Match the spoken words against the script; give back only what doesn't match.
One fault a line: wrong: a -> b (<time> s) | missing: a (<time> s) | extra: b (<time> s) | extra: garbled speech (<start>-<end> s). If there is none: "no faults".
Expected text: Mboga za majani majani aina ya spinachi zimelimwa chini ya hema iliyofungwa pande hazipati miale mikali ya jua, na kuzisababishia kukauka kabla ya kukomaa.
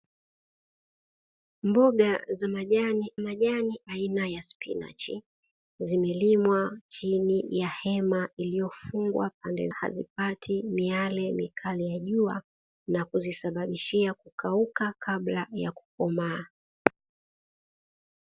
no faults